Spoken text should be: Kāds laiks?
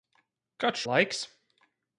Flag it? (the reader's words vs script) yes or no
no